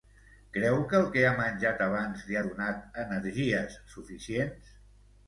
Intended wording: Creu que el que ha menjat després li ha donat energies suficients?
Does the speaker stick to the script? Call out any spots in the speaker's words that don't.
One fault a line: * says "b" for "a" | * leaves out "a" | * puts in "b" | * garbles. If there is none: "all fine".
* says "abans" for "després"